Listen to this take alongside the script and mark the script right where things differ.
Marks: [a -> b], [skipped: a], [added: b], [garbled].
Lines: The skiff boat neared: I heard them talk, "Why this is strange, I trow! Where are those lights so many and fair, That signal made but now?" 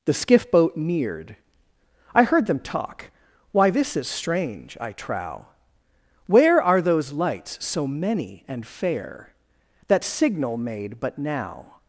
The skiff boat neared: I heard them talk, "Why this is strange, I trow! Where are those lights so many and fair, That signal made but now?"